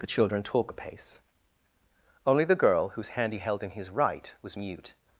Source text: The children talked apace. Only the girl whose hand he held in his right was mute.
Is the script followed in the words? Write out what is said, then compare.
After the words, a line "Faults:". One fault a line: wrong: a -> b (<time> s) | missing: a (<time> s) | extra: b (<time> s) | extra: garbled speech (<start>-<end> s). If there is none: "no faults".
The children talk apace. Only the girl whose hand he held in his right was mute.
Faults:
wrong: talked -> talk (0.4 s)